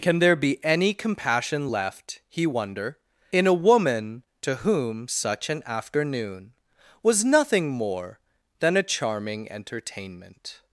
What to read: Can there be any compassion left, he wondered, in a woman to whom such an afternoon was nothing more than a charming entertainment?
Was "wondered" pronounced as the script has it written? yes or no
no